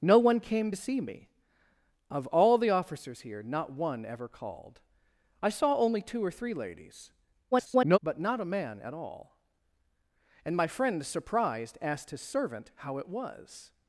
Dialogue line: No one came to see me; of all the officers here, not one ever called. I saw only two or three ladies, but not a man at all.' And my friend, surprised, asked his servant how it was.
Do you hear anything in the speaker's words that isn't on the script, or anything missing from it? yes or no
yes